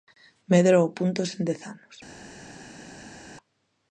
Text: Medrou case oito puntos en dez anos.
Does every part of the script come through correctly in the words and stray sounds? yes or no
no